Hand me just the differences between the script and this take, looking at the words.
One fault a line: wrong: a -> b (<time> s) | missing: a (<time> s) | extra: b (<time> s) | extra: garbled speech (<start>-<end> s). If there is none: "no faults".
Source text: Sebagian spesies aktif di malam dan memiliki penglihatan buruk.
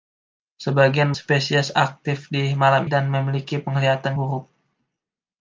no faults